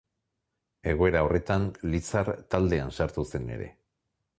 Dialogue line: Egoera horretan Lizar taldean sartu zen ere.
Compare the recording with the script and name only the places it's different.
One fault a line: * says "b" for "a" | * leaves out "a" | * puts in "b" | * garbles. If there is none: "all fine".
all fine